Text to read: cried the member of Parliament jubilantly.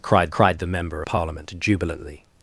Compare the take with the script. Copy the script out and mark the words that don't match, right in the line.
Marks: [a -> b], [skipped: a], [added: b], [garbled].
cried [added: cried] the member [skipped: of] Parliament jubilantly.